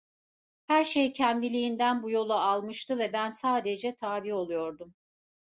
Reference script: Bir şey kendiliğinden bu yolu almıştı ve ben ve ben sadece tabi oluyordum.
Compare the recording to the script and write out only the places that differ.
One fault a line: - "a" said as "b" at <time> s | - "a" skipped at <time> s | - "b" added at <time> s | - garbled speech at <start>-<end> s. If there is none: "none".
- "Bir" said as "Her" at 0.7 s
- "ve ben" skipped at 3.3 s